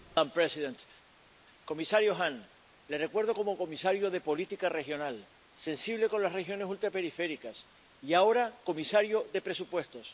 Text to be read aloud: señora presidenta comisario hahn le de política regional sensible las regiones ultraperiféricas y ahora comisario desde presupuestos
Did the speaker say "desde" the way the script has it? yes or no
no